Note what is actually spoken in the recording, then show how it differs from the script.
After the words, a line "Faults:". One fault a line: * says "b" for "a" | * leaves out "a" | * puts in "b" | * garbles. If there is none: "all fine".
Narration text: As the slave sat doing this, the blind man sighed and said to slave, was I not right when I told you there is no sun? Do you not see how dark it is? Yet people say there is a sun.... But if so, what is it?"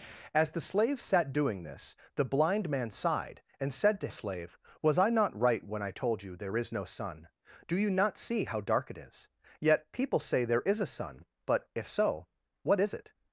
As the slave sat doing this, the blind man sighed and said to slave, was I not right when I told you there is no sun? Do you not see how dark it is? Yet people say there is a sun.... But if so, what is it?"
Faults:
all fine